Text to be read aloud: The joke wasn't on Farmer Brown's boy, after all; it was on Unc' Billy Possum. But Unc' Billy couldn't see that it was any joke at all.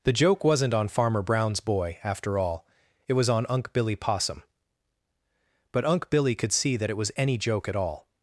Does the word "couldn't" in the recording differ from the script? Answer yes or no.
yes